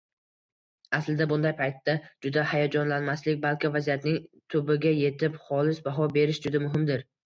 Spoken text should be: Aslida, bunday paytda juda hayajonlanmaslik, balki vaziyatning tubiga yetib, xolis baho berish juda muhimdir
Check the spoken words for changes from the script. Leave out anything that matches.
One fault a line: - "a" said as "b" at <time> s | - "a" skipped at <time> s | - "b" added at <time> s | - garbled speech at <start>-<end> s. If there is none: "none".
none